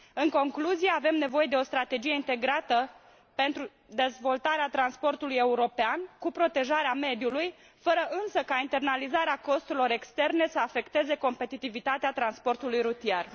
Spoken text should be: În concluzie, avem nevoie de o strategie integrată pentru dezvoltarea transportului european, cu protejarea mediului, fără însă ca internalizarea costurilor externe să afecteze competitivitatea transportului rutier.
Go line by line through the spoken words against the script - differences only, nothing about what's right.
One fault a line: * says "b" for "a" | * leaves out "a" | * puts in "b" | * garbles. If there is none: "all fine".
all fine